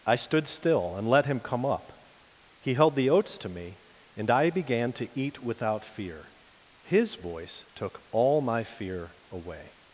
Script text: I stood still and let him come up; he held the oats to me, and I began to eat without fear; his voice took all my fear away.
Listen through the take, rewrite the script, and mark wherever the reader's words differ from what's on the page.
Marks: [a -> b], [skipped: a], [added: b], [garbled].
I stood still and let him come up; he held the oats to me, and I began to eat without fear; his voice took all my fear away.